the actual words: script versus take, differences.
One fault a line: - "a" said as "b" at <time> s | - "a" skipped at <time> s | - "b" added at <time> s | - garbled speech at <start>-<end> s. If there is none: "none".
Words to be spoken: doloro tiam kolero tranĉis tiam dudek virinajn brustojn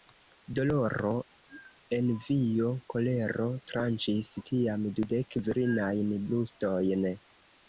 - "tiam" said as "envio" at 2.0 s